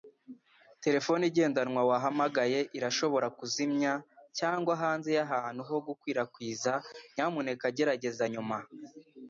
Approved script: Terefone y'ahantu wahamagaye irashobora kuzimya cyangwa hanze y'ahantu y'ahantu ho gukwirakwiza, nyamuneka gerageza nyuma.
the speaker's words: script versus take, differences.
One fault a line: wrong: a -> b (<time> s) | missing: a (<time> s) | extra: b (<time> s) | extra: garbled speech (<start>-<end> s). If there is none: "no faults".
wrong: y'ahantu -> igendanwa (1.3 s)
missing: y'ahantu (5.6 s)